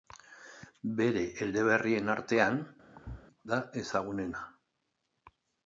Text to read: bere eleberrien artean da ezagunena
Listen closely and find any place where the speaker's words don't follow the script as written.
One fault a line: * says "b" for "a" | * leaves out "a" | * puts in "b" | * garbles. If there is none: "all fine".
all fine